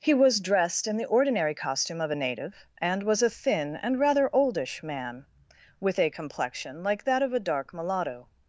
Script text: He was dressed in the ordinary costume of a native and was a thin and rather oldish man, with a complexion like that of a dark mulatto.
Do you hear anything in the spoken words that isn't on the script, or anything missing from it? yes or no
no